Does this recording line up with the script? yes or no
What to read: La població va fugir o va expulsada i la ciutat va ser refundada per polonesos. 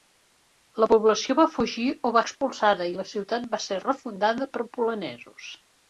yes